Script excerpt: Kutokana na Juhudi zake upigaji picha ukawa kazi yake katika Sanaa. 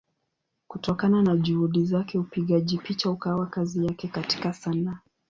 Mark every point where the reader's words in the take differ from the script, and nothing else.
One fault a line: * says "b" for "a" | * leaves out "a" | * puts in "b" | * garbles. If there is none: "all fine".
all fine